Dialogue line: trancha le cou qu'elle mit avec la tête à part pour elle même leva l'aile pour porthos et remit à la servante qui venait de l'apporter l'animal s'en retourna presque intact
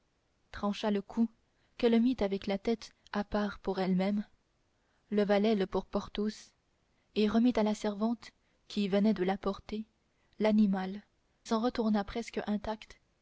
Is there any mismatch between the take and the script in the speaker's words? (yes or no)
no